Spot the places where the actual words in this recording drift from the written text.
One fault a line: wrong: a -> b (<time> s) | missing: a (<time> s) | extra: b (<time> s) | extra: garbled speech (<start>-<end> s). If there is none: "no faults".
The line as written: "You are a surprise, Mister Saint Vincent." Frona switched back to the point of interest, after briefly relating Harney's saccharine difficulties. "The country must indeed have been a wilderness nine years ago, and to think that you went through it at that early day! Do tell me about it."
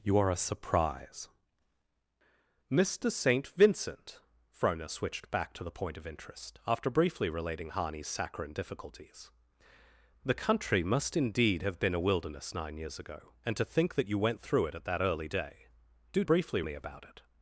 wrong: tell -> briefly (16.2 s)